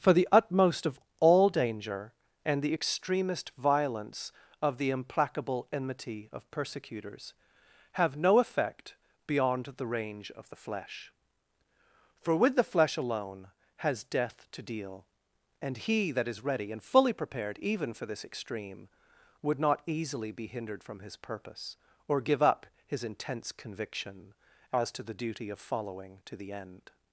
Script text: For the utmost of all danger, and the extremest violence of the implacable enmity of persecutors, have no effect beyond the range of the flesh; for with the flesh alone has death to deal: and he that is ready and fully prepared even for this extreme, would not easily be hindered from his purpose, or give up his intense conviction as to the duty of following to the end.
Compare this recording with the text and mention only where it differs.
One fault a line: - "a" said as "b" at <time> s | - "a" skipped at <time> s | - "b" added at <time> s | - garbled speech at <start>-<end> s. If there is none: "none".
none